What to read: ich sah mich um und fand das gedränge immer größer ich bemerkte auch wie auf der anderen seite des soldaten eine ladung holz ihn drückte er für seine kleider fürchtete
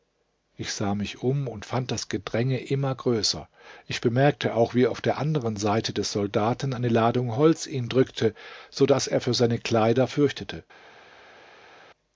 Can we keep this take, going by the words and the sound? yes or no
no